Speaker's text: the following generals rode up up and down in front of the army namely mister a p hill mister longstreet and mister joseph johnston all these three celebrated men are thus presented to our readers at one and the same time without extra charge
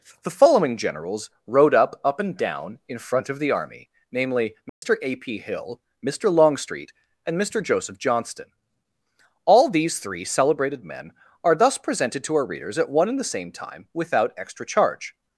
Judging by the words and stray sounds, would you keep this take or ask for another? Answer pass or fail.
fail